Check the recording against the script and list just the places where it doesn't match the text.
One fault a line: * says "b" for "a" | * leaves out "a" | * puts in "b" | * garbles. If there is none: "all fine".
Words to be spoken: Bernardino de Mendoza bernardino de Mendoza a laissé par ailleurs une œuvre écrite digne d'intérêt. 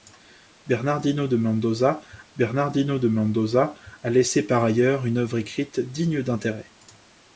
all fine